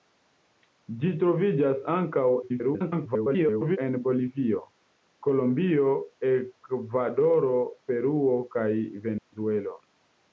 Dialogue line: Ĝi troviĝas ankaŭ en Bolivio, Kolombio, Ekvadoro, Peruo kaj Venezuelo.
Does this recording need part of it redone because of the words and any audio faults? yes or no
yes